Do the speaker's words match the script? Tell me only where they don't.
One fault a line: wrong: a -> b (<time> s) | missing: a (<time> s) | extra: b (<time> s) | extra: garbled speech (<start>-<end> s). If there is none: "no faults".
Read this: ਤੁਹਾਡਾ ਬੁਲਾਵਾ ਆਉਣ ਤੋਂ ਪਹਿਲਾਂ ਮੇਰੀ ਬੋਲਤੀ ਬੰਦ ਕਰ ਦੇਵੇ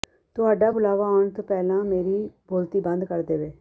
no faults